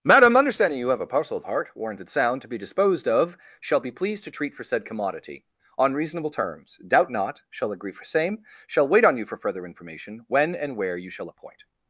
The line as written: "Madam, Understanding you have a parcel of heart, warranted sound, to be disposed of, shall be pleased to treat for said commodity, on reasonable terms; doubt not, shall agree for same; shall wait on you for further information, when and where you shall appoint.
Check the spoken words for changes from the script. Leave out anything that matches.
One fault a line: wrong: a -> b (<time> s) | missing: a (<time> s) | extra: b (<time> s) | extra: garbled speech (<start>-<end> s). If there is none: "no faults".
no faults